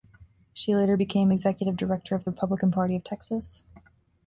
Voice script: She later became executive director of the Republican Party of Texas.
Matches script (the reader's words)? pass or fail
pass